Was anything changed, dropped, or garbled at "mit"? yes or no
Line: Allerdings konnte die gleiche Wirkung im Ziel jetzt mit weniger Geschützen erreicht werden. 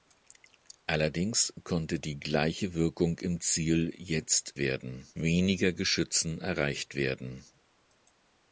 yes